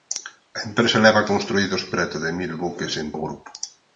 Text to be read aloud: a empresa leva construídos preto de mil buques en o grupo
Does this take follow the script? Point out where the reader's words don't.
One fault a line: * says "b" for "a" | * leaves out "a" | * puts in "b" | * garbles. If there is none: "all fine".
all fine